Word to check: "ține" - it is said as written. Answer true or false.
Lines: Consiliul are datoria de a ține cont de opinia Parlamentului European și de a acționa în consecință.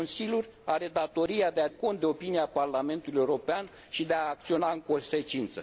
false